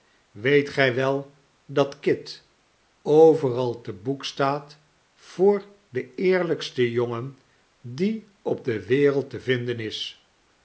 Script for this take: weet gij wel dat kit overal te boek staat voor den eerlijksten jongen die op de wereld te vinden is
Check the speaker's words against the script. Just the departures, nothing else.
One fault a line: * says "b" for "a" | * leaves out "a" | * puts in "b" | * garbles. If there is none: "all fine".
all fine